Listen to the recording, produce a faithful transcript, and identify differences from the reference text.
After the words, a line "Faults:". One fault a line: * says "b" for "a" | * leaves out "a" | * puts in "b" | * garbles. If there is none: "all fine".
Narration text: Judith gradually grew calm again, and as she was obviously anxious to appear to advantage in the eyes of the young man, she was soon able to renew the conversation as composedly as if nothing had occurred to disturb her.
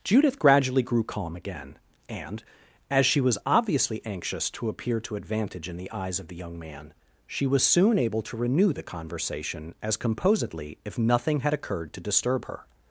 Judith gradually grew calm again, and as she was obviously anxious to appear to advantage in the eyes of the young man, she was soon able to renew the conversation as composedly if nothing had occurred to disturb her.
Faults:
* leaves out "as"